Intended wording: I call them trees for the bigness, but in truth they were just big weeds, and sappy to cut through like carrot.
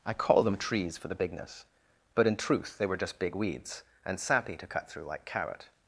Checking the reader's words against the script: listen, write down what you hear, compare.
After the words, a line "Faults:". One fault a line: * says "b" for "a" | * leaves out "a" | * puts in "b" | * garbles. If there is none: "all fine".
I call them trees for the bigness, but in truth they were just big weeds, and sappy to cut through like carrot.
Faults:
all fine